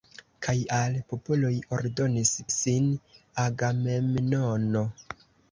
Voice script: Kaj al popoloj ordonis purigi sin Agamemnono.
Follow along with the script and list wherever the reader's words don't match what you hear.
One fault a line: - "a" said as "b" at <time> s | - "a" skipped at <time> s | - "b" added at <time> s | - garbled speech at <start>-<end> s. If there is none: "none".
- "purigi" skipped at 2.3 s